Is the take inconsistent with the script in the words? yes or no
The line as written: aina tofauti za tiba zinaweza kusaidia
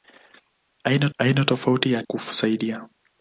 yes